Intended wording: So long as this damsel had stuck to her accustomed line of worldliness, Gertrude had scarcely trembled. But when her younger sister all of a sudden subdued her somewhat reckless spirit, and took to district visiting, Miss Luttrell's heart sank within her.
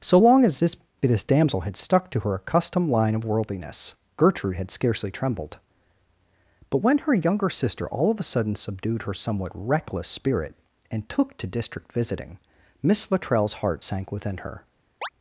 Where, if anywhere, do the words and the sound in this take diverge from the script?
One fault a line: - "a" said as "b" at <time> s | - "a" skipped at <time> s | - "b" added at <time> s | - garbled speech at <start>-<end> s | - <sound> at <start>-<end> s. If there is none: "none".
- "this" added at 1.0 s
- chirp at 15.0-15.1 s